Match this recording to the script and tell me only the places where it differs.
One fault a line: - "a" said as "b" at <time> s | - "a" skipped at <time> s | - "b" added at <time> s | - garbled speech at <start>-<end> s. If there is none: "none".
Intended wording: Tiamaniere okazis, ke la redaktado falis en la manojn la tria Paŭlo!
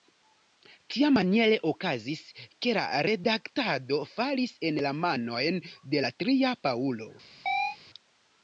- "de" added at 5.9 s